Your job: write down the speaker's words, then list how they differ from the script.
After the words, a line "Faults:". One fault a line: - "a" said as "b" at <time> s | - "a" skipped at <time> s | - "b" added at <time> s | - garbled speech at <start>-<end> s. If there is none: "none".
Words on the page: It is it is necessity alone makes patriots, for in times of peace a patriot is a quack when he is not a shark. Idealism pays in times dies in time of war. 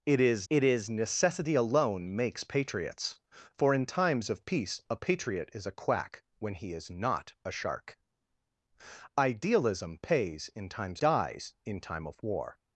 It is it is necessity alone makes patriots, for in times of peace a patriot is a quack when he is not a shark. Idealism pays in times dies in time of war.
Faults:
none